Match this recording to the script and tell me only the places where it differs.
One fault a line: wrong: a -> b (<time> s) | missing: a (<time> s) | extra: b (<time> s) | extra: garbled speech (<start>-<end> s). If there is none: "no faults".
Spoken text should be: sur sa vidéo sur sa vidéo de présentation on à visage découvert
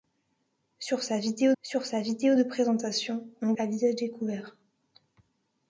no faults